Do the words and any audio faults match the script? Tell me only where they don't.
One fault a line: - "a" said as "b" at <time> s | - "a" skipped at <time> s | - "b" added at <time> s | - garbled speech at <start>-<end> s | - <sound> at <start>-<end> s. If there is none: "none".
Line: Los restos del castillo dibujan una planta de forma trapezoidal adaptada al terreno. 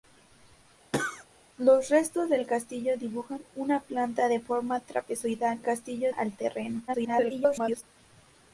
- cough at 0.9-1.3 s
- "adaptada" said as "castillo" at 5.6 s
- garbled speech at 6.9-7.8 s